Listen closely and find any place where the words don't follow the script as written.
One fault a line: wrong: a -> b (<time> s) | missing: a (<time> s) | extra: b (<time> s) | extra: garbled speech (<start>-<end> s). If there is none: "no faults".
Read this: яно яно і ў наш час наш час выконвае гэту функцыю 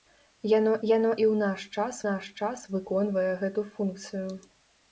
no faults